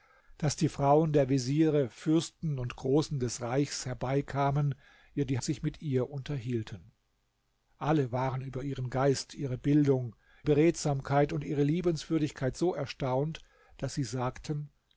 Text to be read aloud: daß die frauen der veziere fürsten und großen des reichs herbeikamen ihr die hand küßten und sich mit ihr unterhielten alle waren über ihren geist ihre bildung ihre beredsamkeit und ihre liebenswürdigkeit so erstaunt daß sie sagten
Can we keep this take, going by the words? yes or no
no